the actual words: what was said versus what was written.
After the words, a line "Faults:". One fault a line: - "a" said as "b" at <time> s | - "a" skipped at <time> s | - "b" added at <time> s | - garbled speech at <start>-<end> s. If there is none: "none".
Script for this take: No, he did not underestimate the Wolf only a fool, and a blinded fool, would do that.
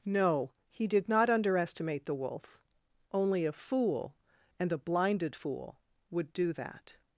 No, he did not underestimate the Wolf only a fool, and a blinded fool, would do that.
Faults:
none